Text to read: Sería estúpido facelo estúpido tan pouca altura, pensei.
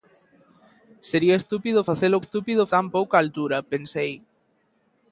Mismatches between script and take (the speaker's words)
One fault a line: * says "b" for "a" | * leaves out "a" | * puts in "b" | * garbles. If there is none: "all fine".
all fine